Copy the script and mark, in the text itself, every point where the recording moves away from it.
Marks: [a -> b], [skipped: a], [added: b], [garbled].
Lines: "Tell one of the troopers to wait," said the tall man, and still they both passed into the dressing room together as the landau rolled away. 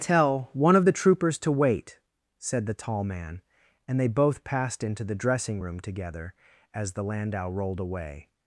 "Tell one of the troopers to wait," said the tall man, and [skipped: still] they both passed into the dressing room together as the landau rolled away.